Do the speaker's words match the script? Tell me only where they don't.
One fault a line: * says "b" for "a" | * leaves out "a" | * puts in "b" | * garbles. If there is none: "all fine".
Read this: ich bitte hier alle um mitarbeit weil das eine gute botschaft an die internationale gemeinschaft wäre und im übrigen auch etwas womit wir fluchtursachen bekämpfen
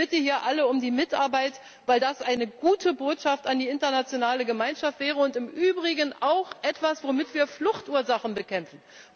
all fine